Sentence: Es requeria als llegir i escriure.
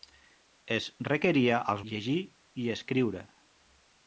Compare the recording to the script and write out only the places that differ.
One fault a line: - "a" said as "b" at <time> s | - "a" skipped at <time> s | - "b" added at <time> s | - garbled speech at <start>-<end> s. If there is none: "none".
none